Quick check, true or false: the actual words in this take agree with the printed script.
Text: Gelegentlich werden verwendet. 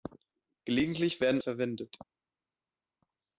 true